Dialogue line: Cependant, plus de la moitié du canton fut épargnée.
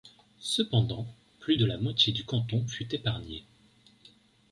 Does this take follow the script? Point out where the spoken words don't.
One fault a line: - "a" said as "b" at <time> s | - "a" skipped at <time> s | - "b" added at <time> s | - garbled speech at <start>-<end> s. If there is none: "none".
none